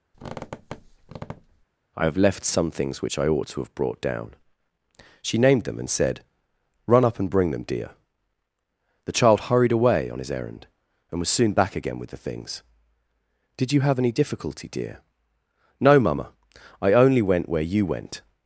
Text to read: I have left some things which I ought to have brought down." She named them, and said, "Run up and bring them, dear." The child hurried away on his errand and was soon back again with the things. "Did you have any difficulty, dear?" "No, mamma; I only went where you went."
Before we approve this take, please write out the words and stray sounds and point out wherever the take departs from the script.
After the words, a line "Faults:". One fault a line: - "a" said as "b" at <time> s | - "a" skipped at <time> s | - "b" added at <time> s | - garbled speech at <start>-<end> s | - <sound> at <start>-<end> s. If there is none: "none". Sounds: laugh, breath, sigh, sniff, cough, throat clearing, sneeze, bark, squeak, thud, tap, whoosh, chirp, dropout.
I have left some things which I ought to have brought down." She named them, and said, "Run up and bring them, dear." The child hurried away on his errand and was soon back again with the things. "Did you have any difficulty, dear?" "No, mamma; I only went where you went."
Faults:
- squeak at 0.1-1.7 s